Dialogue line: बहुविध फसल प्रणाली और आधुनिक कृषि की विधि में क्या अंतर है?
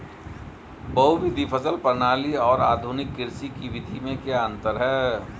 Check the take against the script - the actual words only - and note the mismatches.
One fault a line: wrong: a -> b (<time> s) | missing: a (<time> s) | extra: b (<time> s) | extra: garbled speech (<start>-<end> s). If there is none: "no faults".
no faults